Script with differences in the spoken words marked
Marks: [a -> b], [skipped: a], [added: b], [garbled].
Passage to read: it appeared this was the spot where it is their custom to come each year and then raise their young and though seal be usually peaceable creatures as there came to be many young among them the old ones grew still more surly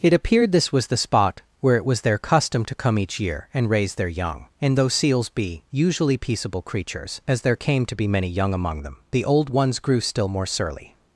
it appeared this was the spot where it [is -> was] their custom to come each year and [skipped: then] raise their young and though [seal -> seals] be usually peaceable creatures as there came to be many young among them the old ones grew still more surly